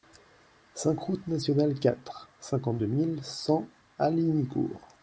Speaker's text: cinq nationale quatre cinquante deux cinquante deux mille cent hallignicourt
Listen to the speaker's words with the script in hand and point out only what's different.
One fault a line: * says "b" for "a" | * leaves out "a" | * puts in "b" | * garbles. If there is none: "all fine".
* puts in "route"
* leaves out "cinquante deux"